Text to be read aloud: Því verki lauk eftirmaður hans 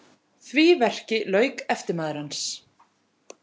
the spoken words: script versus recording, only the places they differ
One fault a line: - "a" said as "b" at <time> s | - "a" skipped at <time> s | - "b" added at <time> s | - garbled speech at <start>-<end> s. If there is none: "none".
none